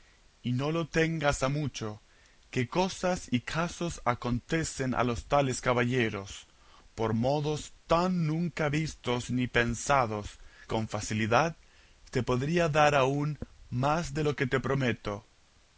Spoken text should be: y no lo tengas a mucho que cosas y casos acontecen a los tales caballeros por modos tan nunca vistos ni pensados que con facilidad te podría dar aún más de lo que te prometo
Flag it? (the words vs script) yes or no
yes